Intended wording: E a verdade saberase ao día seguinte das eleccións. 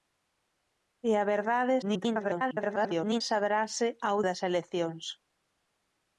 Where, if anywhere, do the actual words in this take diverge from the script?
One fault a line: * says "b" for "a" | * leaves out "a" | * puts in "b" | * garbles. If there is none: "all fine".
* garbles
* leaves out "día seguinte"